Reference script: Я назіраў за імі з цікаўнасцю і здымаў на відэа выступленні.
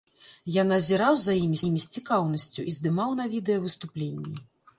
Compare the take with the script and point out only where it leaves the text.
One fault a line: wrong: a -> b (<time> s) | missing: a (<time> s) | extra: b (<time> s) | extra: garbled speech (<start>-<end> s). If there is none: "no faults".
extra: імі (1.6 s)